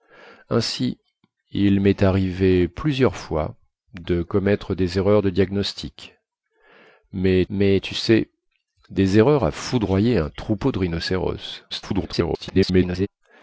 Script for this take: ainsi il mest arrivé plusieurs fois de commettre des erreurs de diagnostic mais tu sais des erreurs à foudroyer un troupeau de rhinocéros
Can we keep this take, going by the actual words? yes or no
no